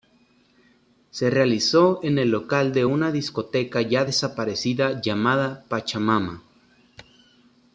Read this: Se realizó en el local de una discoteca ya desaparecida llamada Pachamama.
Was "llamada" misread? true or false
false